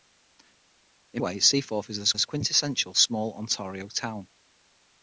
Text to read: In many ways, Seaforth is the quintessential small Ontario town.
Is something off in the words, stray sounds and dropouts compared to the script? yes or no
yes